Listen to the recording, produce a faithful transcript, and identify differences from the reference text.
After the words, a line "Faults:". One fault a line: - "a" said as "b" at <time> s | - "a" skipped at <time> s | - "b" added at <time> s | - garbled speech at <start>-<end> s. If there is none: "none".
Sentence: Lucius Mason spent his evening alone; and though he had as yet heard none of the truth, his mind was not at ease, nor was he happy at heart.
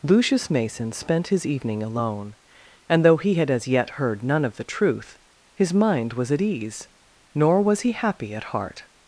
Lucius Mason spent his evening alone; and though he had as yet heard none of the truth, his mind was at ease, nor was he happy at heart.
Faults:
- "not" skipped at 6.3 s